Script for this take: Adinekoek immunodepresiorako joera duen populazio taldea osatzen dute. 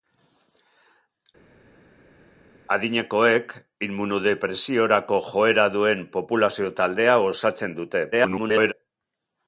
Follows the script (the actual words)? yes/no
no